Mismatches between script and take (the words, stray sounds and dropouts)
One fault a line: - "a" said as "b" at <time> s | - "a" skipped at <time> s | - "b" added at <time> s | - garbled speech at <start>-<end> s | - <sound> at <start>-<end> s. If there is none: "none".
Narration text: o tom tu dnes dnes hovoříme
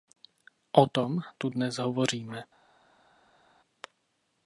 - "dnes" skipped at 1.8 s